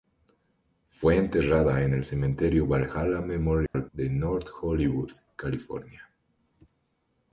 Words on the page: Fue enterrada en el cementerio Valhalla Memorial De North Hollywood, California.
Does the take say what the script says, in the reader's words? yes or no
yes